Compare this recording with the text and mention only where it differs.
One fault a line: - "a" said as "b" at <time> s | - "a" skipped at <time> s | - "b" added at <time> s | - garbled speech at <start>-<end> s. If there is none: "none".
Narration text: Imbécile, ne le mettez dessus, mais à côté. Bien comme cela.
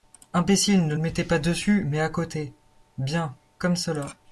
- "pas" added at 1.2 s